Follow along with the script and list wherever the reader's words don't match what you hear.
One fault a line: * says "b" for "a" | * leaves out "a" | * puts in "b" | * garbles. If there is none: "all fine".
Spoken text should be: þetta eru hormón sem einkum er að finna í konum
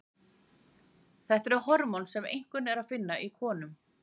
all fine